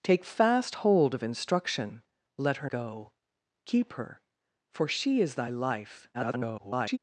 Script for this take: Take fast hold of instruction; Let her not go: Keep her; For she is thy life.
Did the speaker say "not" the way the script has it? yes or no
no